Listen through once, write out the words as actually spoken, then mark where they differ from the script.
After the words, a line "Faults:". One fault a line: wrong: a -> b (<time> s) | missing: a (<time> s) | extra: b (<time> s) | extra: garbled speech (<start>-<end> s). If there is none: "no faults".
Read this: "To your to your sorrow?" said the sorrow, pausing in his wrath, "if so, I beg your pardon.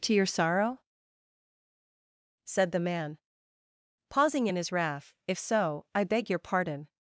"To your sorrow?" said the man, pausing in his wrath, "if so, I beg your pardon.
Faults:
missing: to your (0.2 s)
wrong: sorrow -> man (2.8 s)